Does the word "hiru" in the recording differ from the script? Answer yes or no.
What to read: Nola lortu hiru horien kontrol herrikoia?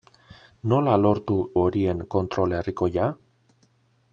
yes